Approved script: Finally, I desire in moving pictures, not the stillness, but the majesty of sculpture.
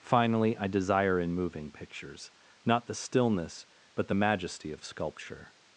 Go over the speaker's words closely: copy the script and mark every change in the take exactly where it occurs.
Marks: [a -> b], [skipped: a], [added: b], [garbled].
Finally, I desire in moving pictures, not the stillness, but the majesty of sculpture.